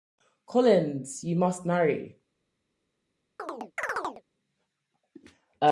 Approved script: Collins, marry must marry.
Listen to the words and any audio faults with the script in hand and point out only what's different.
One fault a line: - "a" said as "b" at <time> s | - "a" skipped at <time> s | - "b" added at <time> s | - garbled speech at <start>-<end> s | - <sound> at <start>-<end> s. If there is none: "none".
- "marry" said as "you" at 1.2 s
- chirp at 3.4-4.2 s